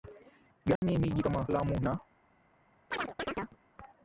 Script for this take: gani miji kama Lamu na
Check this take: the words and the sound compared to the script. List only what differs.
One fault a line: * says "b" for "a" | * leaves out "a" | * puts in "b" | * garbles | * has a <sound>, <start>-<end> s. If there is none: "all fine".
* has a dropout, 0.8-0.8 s
* has a chirp, 2.9-3.6 s